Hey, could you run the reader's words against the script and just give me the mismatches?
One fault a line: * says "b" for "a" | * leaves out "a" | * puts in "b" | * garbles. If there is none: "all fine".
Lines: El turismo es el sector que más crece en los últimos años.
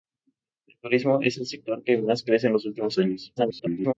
* garbles